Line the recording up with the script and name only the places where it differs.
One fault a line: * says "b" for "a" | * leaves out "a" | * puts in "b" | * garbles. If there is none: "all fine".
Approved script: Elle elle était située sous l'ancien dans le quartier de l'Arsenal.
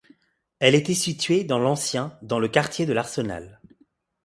* leaves out "elle"
* says "dans" for "sous"